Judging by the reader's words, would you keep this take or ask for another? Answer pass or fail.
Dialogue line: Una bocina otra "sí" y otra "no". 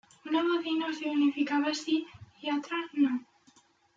fail